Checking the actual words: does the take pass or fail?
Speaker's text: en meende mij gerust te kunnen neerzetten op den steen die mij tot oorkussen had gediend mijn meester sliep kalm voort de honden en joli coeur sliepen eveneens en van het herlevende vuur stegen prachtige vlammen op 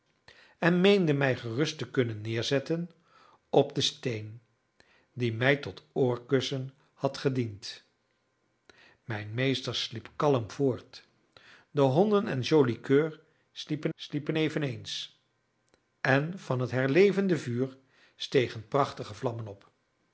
fail